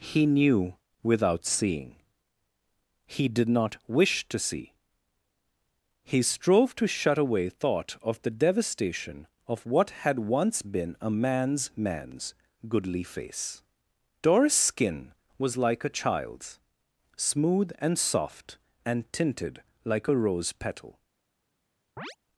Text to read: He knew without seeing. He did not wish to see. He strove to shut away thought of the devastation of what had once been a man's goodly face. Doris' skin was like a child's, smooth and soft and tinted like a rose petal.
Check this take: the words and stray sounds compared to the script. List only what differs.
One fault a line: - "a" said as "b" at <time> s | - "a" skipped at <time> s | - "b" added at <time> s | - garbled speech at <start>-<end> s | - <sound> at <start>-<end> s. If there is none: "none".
- "man's" added at 11.7 s
- chirp at 22.0-22.2 s